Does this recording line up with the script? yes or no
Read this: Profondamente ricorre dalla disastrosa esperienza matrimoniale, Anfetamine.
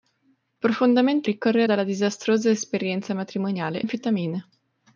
yes